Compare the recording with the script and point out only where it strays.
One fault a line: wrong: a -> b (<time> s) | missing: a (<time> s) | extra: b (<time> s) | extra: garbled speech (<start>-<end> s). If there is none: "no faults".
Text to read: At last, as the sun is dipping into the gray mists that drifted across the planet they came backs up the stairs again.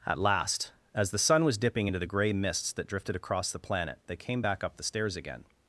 wrong: is -> was (1.4 s)
wrong: backs -> back (4.4 s)